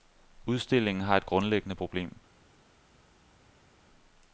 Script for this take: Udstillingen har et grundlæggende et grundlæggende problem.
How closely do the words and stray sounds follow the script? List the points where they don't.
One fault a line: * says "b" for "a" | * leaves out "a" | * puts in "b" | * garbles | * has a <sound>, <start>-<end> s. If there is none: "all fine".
* leaves out "et grundlæggende"